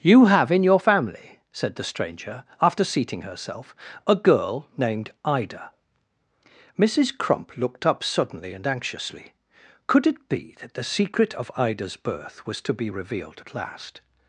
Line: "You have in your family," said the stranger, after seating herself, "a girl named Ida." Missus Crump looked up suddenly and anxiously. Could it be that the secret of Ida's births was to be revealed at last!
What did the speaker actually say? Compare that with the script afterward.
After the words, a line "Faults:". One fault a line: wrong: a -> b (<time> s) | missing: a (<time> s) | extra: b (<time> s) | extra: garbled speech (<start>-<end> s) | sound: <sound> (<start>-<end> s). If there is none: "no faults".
"You have in your family," said the stranger, after seating herself, "a girl named Ida." Missus Crump looked up suddenly and anxiously. Could it be that the secret of Ida's birth was to be revealed at last!
Faults:
wrong: births -> birth (12.0 s)